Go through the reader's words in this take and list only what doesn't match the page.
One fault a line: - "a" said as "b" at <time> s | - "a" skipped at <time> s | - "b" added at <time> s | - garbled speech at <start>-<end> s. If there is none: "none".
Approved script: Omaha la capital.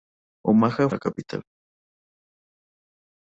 none